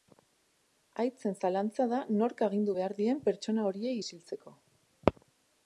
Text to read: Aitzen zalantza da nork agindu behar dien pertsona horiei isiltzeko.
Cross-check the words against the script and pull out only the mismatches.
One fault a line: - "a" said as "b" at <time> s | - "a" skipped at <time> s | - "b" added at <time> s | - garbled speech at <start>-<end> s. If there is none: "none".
none